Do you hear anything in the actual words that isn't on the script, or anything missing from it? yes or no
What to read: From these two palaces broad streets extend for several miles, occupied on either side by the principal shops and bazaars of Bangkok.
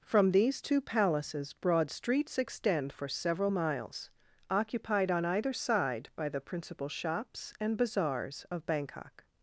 no